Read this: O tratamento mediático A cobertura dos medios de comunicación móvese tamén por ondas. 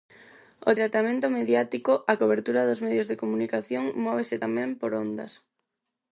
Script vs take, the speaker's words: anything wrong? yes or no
no